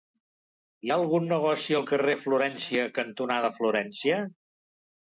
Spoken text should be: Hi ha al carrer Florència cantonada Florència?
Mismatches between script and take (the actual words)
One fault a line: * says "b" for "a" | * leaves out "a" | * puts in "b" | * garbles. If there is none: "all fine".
* puts in "algun negoci"